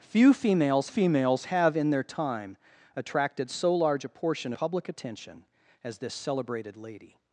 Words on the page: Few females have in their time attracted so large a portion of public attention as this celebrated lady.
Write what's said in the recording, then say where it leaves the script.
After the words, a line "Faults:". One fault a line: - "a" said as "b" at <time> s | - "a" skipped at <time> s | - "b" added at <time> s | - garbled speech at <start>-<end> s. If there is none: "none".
Few females females have in their time attracted so large a portion public attention as this celebrated lady.
Faults:
- "females" added at 0.9 s
- "of" skipped at 4.5 s